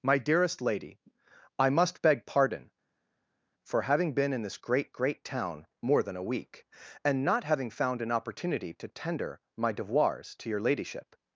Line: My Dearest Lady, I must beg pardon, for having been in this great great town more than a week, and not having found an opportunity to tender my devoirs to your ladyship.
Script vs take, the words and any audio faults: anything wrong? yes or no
no